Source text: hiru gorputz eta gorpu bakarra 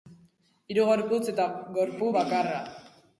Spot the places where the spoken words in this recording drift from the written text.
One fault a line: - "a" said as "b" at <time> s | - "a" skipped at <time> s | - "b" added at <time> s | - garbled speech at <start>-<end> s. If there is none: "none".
none